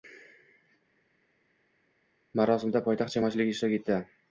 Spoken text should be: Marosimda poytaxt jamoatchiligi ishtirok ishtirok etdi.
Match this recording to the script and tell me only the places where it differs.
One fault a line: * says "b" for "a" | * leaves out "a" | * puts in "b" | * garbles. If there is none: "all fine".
* leaves out "ishtirok"